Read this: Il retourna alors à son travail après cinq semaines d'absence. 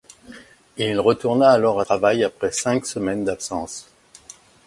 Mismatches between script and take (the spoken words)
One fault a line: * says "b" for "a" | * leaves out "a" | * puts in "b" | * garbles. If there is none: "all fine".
* leaves out "son"